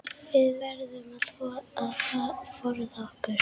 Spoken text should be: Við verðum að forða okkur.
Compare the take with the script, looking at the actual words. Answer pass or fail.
pass